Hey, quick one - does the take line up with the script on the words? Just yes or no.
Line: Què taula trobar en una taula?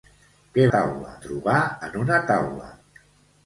yes